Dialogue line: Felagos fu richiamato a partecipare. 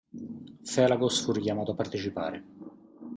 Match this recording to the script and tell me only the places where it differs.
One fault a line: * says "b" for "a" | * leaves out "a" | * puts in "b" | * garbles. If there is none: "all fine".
all fine